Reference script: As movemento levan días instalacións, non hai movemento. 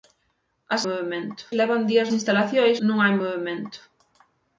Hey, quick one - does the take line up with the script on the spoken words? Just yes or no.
yes